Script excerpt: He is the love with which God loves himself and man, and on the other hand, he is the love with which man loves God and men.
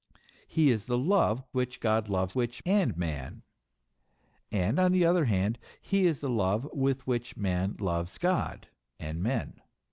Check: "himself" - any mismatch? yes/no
yes